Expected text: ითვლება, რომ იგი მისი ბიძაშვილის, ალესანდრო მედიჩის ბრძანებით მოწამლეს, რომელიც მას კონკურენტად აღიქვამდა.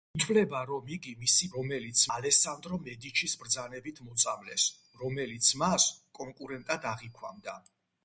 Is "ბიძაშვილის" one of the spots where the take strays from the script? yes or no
yes